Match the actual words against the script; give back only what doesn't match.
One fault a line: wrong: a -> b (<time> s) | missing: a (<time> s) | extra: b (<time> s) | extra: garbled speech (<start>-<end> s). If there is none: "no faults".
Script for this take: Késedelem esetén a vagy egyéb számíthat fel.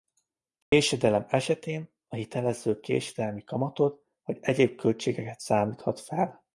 extra: hitelező késedelmi kamatot (2.1 s)
extra: költségeket (4.7 s)